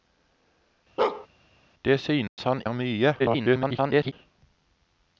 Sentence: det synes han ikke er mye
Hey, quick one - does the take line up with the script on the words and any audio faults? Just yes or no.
no